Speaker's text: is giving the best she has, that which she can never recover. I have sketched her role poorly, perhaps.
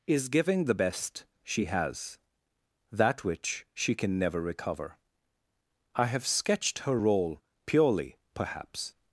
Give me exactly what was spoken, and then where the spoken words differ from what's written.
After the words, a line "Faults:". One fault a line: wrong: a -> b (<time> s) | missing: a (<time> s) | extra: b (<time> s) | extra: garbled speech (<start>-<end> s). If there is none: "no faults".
is giving the best she has, that which she can never recover. I have sketched her role purely, perhaps.
Faults:
wrong: poorly -> purely (7.7 s)